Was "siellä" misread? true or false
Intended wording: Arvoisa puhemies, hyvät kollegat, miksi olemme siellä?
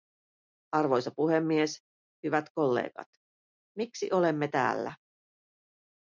true